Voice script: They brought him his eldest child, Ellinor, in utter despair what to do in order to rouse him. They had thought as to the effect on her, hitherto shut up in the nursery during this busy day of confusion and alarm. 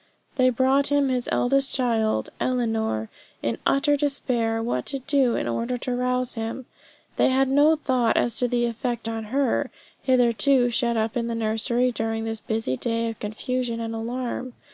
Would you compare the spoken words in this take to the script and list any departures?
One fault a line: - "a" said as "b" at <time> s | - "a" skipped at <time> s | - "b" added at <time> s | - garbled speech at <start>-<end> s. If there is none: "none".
- "no" added at 7.5 s